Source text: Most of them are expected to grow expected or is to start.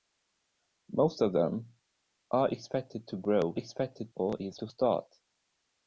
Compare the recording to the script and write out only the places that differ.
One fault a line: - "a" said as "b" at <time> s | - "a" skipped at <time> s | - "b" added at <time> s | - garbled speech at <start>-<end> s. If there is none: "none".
none